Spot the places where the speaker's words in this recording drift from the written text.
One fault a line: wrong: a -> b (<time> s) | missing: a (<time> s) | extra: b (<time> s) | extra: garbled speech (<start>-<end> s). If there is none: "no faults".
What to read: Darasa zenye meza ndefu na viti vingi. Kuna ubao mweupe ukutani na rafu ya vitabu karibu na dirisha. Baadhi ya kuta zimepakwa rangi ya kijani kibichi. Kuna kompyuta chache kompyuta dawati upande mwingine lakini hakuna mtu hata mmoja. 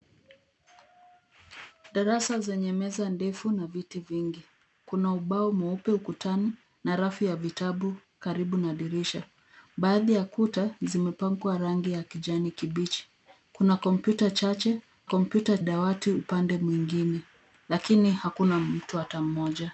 no faults